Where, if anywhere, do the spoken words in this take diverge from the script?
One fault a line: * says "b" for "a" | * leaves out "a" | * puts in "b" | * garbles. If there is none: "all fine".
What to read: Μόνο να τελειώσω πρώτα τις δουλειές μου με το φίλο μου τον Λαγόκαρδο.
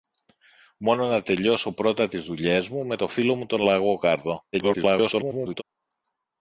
* garbles